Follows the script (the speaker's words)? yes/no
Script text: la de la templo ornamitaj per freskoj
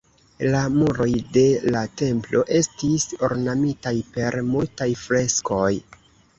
no